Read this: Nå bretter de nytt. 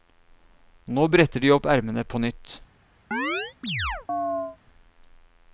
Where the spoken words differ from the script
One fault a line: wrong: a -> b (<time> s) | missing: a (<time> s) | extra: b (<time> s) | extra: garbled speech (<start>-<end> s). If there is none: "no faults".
extra: opp ermene på (1.6 s)